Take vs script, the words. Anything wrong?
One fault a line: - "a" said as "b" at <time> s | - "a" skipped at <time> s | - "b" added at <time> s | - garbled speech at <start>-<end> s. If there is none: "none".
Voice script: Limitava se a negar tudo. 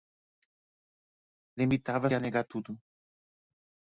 - "se" skipped at 2.1 s